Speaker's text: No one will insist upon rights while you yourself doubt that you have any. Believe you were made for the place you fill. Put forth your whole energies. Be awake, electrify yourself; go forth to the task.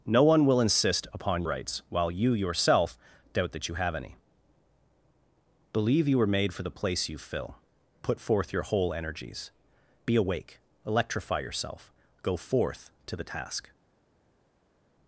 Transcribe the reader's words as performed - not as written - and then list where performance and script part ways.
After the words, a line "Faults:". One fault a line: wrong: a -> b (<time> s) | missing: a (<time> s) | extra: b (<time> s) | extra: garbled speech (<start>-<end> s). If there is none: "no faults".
No one will insist upon rights while you yourself doubt that you have any. Believe you were made for the place you fill. Put forth your whole energies. Be awake, electrify yourself; go forth to the task.
Faults:
no faults